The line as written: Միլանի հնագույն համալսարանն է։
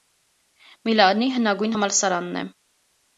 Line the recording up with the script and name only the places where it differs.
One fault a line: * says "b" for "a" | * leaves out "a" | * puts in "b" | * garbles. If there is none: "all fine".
all fine